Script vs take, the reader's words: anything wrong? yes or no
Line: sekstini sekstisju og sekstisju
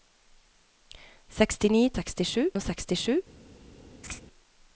no